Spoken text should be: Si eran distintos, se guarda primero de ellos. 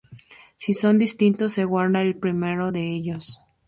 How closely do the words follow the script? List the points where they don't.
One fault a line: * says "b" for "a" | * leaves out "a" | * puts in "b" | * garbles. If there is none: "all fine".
* says "son" for "eran"
* puts in "el"